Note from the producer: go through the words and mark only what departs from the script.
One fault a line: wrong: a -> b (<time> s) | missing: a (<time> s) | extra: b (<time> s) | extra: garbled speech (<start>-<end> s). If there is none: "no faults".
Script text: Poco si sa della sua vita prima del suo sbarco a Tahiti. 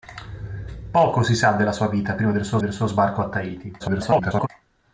extra: del suo (2.6 s)
extra: garbled speech (3.8-4.5 s)